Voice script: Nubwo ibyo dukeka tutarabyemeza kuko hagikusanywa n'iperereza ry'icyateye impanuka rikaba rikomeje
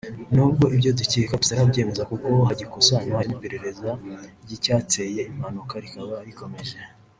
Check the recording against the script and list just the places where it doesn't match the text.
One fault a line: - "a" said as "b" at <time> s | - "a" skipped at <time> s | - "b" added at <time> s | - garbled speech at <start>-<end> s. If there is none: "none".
none